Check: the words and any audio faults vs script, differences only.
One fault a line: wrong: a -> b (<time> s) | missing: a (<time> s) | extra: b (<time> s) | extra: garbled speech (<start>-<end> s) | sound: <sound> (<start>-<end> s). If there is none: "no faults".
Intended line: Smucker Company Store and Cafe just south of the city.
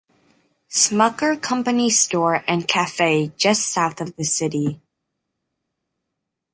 no faults